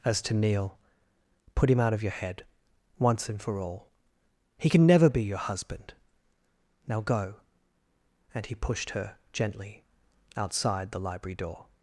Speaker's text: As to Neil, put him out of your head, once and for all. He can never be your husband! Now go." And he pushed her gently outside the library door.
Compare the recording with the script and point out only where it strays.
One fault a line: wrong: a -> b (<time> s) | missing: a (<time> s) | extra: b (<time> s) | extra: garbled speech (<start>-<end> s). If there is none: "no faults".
no faults